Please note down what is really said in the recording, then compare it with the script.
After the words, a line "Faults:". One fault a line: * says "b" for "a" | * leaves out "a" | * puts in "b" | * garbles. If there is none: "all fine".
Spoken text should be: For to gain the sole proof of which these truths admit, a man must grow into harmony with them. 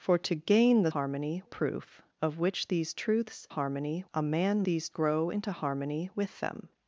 For to gain the harmony proof of which these truths harmony, a man these grow into harmony with them.
Faults:
* says "harmony" for "sole"
* says "harmony" for "admit"
* says "these" for "must"